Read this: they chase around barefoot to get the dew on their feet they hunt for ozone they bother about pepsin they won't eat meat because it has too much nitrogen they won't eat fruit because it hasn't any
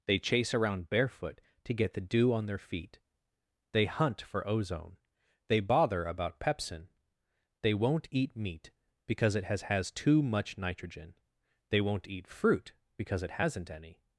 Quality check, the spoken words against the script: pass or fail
fail